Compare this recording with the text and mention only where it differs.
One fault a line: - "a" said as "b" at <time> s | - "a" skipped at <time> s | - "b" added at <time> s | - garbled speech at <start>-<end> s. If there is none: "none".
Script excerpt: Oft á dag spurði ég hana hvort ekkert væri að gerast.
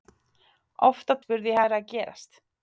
- "dag" skipped at 1.1 s
- "hana hvort ekkert" skipped at 1.6 s